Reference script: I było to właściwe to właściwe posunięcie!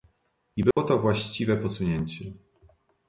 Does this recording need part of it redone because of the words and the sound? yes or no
yes